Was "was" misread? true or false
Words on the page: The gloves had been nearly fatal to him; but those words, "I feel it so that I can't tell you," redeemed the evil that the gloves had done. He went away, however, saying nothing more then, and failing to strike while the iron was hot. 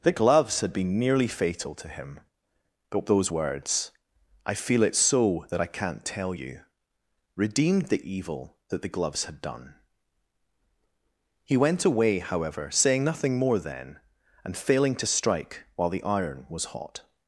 false